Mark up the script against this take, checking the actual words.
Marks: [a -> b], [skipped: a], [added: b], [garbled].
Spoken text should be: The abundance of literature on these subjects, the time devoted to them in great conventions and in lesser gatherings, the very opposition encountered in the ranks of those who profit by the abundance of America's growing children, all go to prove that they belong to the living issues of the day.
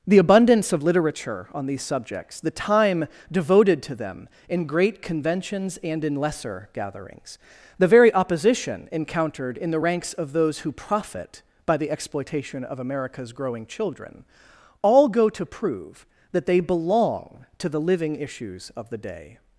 The abundance of literature on these subjects, the time devoted to them in great conventions and in lesser gatherings, the very opposition encountered in the ranks of those who profit by the [abundance -> exploitation] of America's growing children, all go to prove that they belong to the living issues of the day.